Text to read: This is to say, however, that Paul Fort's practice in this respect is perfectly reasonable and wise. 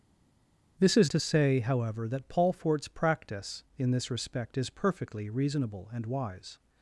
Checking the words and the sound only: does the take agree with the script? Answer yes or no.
yes